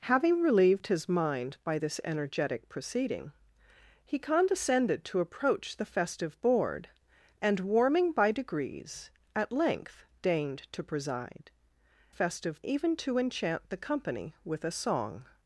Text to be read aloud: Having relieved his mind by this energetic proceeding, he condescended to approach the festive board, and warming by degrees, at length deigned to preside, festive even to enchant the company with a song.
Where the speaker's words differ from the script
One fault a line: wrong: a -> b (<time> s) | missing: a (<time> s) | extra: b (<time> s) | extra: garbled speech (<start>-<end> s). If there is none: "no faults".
no faults